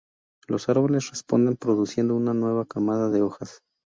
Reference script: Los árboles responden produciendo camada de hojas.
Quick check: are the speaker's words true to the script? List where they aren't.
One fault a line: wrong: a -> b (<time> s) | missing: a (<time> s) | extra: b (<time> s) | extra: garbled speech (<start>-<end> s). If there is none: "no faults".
extra: una nueva (2.1 s)